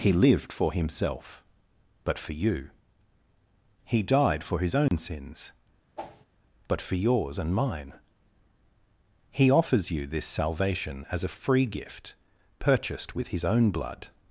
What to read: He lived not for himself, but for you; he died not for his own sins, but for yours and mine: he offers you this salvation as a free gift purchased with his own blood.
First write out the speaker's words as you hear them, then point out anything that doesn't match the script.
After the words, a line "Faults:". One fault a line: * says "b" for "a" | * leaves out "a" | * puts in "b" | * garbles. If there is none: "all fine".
He lived for himself, but for you; he died for his own sins, but for yours and mine: he offers you this salvation as a free gift purchased with his own blood.
Faults:
* leaves out "not"
* leaves out "not"